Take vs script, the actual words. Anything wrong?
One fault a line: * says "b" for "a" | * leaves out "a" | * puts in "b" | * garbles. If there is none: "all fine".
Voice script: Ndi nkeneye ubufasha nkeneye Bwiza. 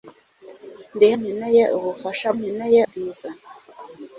all fine